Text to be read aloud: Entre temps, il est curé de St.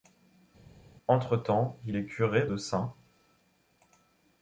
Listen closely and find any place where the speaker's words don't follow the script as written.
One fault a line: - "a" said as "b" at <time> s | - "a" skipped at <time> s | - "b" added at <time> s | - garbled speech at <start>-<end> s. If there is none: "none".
none